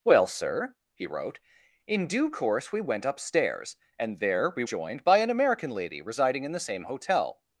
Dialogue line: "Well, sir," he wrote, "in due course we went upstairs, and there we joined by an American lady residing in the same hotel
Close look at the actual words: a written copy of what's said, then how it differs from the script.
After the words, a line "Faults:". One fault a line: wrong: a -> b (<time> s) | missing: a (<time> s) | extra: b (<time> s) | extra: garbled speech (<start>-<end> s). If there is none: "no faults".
"Well, sir," he wrote, "in due course we went upstairs, and there we joined by an American lady residing in the same hotel
Faults:
no faults